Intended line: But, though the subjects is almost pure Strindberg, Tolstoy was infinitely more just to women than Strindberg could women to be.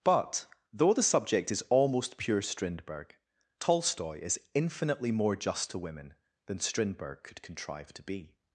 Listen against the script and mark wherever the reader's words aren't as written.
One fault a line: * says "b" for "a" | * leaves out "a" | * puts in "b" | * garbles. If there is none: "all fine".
* says "subject" for "subjects"
* says "is" for "was"
* says "contrive" for "women"